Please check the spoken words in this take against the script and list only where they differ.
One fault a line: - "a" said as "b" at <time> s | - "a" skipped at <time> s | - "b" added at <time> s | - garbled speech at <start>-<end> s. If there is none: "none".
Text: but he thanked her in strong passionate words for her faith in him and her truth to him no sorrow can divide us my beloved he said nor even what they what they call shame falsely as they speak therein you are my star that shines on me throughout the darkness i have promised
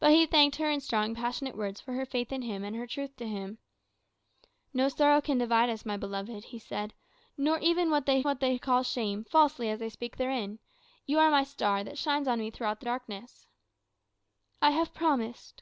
none